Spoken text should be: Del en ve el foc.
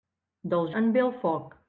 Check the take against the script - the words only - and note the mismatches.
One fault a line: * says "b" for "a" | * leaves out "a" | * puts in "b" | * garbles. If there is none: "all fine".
all fine